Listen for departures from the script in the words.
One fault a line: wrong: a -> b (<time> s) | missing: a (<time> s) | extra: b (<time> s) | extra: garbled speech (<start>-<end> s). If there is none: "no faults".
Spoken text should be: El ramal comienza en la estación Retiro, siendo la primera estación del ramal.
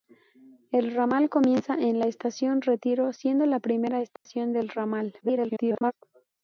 extra: garbled speech (5.2-5.9 s)